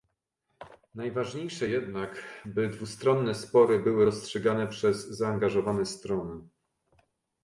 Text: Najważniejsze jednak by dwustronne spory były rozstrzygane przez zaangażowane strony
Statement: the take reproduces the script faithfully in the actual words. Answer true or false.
true